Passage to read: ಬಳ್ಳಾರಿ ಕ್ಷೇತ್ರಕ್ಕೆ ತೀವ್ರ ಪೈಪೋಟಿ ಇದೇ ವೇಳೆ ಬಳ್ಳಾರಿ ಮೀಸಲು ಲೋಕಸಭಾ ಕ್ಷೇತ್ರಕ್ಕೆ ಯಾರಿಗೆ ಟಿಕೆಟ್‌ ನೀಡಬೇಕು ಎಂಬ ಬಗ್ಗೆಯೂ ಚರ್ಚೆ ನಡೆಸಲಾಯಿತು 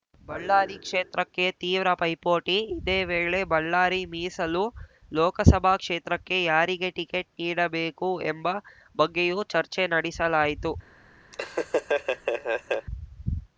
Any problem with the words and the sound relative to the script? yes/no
yes